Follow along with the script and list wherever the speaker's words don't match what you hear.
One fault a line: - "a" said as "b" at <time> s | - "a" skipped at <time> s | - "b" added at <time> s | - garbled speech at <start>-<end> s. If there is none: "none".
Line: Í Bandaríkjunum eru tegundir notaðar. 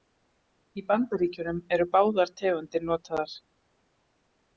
- "báðar" added at 1.9 s